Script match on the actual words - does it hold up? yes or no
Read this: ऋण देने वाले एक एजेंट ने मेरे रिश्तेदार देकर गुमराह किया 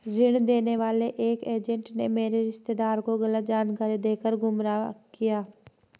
no